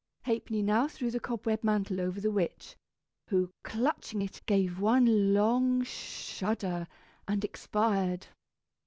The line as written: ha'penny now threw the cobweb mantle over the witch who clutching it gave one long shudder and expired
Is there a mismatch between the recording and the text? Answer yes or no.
no